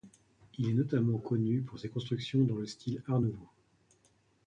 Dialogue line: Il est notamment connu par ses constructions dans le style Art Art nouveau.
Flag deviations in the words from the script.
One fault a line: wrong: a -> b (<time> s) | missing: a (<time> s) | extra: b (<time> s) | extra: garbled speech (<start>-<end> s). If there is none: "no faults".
wrong: par -> pour (1.6 s)
missing: Art (3.2 s)